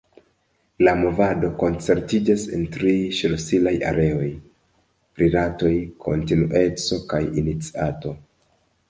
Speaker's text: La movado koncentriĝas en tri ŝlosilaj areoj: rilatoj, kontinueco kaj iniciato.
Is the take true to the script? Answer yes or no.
yes